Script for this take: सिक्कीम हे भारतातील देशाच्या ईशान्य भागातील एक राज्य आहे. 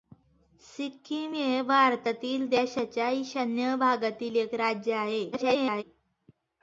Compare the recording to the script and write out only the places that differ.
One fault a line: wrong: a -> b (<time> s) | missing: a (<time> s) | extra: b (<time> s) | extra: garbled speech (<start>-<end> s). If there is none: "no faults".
extra: garbled speech (5.3-5.8 s)